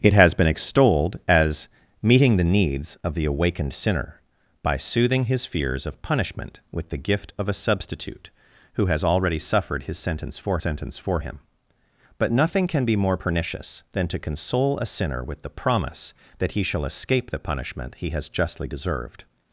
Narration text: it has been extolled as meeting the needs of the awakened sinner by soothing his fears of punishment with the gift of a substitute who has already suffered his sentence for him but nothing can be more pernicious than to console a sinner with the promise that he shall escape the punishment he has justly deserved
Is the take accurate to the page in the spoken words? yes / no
no